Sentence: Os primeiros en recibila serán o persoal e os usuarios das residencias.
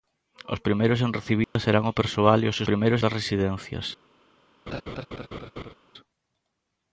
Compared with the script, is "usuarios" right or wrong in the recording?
wrong